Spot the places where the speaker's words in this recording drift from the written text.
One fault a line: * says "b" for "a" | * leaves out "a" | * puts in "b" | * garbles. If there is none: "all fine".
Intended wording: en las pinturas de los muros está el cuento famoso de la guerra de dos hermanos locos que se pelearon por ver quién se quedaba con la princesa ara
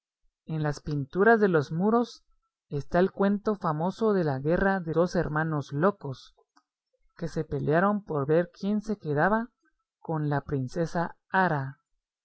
all fine